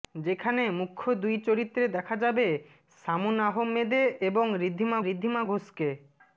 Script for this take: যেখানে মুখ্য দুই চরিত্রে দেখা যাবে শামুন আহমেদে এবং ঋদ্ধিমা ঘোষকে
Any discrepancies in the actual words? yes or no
yes